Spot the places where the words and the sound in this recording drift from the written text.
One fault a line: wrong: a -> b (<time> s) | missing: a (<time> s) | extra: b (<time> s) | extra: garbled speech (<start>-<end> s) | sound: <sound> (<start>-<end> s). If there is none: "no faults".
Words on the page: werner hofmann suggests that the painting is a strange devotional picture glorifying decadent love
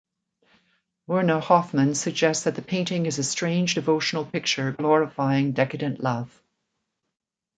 no faults